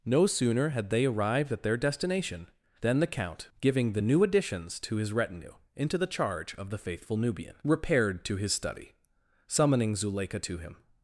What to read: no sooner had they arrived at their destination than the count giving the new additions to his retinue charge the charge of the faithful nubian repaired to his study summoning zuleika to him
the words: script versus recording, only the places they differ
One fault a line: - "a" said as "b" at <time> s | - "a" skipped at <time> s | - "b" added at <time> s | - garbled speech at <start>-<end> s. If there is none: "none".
- "charge" said as "into" at 5.7 s